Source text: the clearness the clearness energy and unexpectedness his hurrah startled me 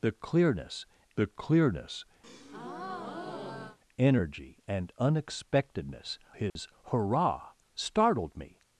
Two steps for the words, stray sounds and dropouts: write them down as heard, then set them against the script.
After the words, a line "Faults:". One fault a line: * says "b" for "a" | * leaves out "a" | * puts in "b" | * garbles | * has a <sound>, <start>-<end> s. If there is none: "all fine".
the clearness the clearness energy and unexpectedness his hurrah startled me
Faults:
* has a breath, 2.2-3.8 s
* has a dropout, 6.5-6.6 s